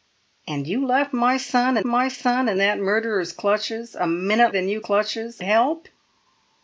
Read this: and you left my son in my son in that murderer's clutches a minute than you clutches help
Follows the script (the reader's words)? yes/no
yes